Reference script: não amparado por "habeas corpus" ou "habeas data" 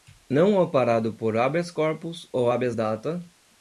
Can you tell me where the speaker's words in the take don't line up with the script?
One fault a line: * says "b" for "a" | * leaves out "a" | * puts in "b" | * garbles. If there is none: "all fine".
all fine